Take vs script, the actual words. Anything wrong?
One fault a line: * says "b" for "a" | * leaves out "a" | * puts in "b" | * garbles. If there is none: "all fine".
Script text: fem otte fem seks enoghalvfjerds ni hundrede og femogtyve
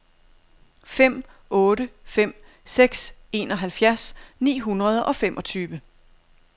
all fine